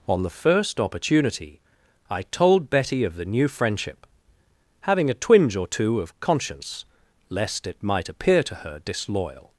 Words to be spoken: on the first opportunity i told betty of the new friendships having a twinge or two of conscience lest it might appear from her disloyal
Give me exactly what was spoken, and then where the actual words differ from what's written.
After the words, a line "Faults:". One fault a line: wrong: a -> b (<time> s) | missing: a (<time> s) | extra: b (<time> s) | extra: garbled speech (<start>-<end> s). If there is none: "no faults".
on the first opportunity i told betty of the new friendship having a twinge or two of conscience lest it might appear to her disloyal
Faults:
wrong: friendships -> friendship (3.5 s)
wrong: from -> to (8.4 s)